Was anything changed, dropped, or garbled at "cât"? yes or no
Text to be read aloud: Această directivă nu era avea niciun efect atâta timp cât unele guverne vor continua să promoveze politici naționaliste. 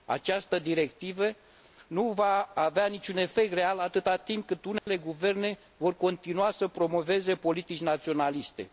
no